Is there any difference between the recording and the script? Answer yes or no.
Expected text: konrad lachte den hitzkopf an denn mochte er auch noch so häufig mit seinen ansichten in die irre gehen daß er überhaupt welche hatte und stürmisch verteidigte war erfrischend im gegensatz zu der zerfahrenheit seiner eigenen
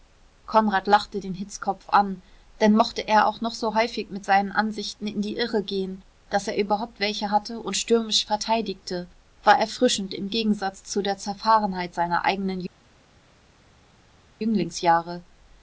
no